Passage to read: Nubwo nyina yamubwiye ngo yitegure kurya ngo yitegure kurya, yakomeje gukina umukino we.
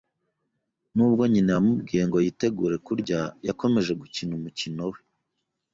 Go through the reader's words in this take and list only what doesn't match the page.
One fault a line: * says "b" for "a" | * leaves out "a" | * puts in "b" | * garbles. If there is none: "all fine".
* leaves out "ngo yitegure kurya"